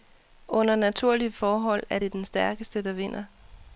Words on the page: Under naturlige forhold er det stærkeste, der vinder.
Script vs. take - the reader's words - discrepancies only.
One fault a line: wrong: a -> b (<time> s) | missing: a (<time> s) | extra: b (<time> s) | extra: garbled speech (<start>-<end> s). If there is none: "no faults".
extra: den (2.1 s)